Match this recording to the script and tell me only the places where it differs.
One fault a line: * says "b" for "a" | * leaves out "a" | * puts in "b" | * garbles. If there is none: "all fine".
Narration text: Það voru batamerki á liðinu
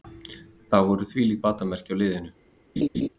* puts in "þvílík"